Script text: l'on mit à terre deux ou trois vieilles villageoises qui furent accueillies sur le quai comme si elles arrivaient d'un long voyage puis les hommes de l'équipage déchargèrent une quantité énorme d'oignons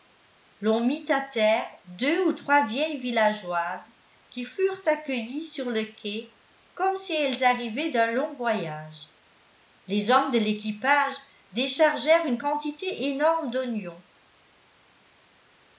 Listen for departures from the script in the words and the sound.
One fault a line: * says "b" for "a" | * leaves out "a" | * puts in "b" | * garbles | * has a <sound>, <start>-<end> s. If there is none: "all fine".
* leaves out "puis"